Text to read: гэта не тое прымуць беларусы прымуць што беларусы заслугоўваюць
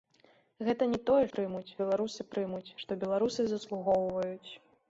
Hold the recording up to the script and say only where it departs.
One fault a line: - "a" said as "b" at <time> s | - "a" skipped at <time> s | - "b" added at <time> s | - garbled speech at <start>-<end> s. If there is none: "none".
none